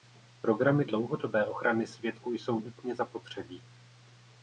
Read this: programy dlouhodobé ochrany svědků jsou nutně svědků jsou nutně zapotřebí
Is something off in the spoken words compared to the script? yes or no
yes